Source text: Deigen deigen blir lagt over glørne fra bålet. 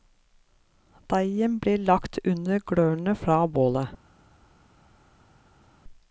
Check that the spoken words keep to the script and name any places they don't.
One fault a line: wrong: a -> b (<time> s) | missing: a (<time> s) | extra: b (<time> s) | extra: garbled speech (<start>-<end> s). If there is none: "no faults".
missing: deigen (1.6 s)
wrong: over -> under (2.2 s)